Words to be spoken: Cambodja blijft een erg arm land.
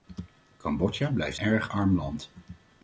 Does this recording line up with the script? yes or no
no